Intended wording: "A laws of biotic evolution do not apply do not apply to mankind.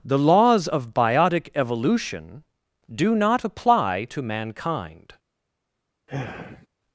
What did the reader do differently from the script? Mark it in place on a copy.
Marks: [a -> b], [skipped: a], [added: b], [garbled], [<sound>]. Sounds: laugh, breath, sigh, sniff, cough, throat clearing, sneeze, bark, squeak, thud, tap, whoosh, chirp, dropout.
["A -> The] laws of biotic evolution do not apply [skipped: do not apply] to mankind. [sigh]